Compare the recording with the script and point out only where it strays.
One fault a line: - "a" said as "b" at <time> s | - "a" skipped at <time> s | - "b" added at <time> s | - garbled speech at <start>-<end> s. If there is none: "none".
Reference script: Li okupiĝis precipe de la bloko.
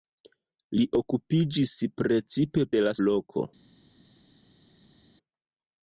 none